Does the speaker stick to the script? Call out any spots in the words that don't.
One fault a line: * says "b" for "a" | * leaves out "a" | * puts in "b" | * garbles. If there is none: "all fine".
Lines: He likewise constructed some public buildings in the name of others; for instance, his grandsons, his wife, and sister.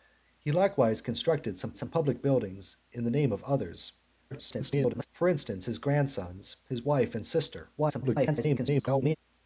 * puts in "some"
* garbles
* garbles